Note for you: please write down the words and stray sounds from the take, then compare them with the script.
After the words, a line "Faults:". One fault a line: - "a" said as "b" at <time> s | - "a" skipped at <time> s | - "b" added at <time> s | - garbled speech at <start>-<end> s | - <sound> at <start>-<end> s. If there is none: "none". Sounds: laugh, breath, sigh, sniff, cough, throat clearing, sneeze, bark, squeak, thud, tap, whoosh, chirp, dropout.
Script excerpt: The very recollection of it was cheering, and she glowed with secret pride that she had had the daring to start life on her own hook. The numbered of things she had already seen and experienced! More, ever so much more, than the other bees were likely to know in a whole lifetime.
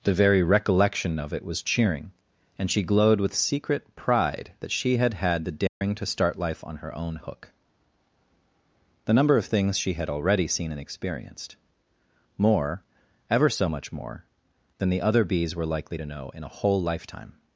The very recollection of it was cheering, and she glowed with secret pride that she had had the daring to start life on her own hook. The number of things she had already seen and experienced! More, ever so much more, than the other bees were likely to know in a whole lifetime.
Faults:
- dropout at 5.7-5.8 s
- "numbered" said as "number" at 9.1 s